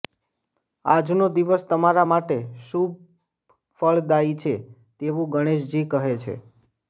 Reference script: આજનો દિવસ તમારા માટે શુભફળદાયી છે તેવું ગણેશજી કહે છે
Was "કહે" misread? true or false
false